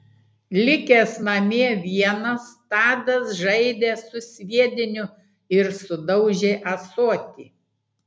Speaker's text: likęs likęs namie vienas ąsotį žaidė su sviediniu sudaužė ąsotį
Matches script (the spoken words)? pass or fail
fail